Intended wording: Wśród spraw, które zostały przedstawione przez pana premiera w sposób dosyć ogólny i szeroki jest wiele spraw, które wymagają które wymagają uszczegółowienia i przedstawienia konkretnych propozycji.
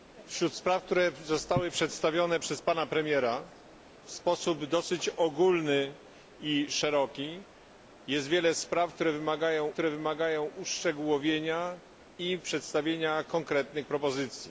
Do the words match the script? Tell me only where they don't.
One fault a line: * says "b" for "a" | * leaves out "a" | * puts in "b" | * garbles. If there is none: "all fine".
all fine